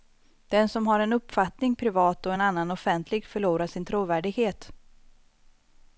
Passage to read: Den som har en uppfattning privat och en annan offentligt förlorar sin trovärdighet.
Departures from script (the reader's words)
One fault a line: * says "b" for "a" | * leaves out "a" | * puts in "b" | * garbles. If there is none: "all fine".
all fine